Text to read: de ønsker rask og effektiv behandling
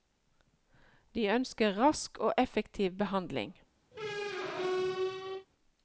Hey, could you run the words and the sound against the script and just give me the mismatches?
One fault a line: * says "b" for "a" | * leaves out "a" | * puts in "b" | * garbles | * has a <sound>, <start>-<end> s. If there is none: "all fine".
* has a squeak, 3.9-5.5 s